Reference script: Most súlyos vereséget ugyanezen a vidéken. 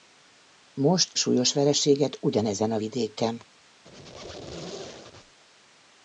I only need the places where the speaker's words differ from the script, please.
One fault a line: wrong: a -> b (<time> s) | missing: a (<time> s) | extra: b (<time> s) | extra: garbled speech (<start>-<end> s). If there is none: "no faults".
no faults